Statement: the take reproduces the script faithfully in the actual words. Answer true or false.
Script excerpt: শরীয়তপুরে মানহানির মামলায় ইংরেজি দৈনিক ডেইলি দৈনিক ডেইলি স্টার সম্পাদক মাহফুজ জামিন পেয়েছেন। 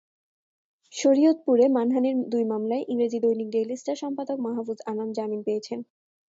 false